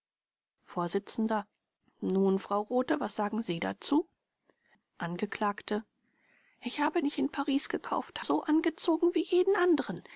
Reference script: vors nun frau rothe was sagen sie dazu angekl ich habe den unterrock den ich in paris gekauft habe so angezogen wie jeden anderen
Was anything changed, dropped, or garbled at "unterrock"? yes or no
yes